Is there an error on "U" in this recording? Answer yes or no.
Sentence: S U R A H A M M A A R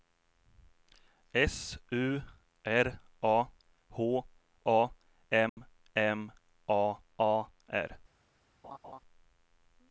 no